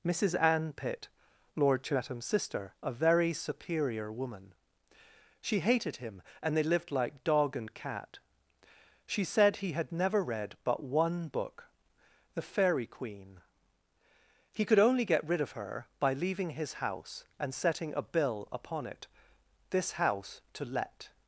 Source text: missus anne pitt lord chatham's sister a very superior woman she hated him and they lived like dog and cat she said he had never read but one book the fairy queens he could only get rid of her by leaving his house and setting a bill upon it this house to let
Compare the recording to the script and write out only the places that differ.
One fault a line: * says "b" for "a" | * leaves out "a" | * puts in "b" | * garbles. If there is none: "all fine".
* says "queen" for "queens"